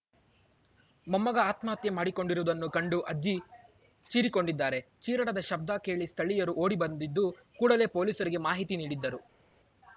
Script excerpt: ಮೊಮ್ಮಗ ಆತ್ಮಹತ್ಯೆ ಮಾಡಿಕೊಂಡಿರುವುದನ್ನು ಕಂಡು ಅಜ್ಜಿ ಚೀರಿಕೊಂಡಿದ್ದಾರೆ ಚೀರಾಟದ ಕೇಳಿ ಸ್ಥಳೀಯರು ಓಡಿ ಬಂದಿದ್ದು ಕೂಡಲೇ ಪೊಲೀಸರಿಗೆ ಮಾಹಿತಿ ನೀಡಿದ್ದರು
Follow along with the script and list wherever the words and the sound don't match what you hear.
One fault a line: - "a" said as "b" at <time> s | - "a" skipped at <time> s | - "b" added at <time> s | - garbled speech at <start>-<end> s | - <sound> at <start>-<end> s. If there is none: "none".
- "ಶಬ್ದ" added at 5.5 s